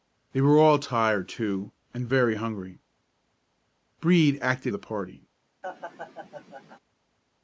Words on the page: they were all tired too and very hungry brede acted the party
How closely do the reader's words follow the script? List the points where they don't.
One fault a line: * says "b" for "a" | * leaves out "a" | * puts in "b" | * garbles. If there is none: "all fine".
all fine